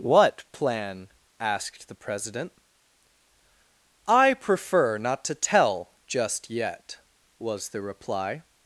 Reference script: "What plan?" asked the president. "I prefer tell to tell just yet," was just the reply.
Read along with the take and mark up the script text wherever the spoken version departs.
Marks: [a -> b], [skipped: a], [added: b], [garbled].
"What plan?" asked the president. "I prefer [tell -> not] to tell just yet," was [skipped: just] the reply.